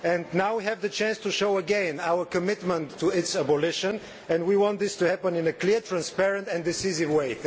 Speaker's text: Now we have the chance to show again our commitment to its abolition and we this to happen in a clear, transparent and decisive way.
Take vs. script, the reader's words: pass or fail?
fail